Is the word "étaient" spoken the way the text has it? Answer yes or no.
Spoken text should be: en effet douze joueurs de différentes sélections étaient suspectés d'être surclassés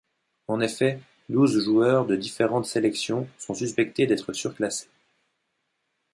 no